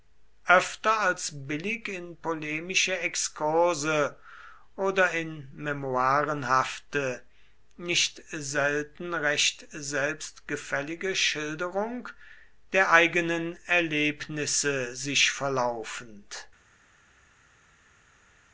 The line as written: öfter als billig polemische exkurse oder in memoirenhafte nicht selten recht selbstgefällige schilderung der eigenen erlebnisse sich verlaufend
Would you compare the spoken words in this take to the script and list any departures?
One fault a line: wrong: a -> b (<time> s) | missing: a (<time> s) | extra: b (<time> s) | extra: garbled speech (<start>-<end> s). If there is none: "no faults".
extra: in (1.9 s)